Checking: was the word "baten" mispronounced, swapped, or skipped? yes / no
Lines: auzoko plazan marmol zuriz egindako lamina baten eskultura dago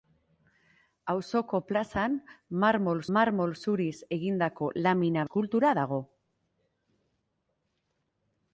yes